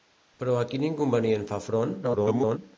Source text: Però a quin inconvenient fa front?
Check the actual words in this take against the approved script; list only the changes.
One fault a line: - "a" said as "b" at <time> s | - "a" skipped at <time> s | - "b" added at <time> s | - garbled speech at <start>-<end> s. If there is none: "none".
- garbled speech at 2.0-2.6 s